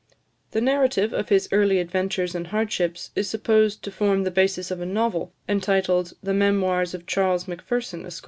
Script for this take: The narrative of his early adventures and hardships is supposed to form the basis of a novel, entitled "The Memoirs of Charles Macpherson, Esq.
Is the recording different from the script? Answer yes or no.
no